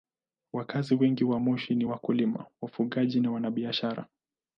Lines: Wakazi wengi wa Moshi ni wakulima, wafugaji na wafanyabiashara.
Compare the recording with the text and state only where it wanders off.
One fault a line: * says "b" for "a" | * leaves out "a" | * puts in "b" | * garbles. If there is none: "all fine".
all fine